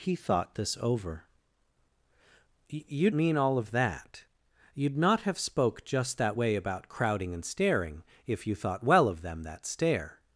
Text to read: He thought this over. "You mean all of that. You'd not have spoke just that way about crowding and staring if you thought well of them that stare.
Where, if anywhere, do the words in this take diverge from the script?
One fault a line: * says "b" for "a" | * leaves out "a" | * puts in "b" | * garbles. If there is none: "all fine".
all fine